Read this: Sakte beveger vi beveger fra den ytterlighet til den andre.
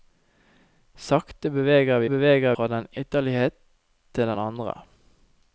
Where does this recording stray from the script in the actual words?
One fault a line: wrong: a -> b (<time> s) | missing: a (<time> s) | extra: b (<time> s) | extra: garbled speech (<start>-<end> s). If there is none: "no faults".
no faults